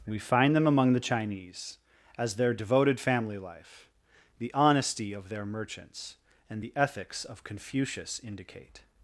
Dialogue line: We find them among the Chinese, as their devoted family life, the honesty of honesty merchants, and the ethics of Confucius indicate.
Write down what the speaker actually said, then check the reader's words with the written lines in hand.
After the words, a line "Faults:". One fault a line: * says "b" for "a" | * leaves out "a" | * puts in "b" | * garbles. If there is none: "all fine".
We find them among the Chinese, as their devoted family life, the honesty of their merchants, and the ethics of Confucius indicate.
Faults:
* says "their" for "honesty"